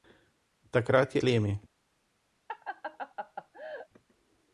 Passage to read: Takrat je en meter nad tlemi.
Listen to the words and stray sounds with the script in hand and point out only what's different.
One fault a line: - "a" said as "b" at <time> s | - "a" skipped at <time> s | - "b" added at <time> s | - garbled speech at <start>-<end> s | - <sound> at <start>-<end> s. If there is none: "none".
- "en meter nad" skipped at 1.2 s
- laugh at 2.5-3.9 s